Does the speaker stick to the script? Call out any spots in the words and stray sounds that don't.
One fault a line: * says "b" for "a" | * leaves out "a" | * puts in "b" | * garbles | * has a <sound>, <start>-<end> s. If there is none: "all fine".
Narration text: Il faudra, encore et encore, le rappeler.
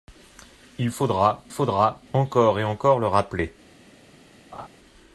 * puts in "faudra"
* has a laugh, 4.5-4.7 s